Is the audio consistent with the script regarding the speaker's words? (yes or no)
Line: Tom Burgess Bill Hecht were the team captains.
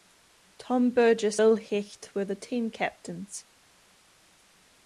yes